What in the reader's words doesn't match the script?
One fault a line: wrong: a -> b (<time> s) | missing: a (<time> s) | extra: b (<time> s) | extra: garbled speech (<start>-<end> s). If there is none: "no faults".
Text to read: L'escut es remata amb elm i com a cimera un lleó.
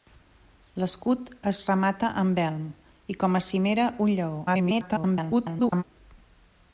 extra: garbled speech (4.5-5.8 s)